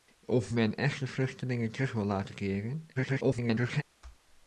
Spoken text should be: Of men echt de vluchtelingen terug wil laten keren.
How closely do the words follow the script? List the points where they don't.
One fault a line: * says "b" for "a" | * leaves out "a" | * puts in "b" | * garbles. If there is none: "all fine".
* garbles